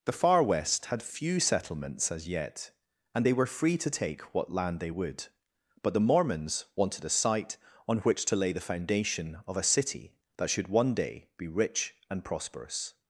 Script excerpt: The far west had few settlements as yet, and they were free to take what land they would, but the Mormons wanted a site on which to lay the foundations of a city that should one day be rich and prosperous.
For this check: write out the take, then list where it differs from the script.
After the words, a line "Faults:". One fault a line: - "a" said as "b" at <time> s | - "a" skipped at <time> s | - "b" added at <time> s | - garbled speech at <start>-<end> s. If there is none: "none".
The far west had few settlements as yet, and they were free to take what land they would, but the Mormons wanted a site on which to lay the foundation of a city that should one day be rich and prosperous.
Faults:
- "foundations" said as "foundation" at 8.6 s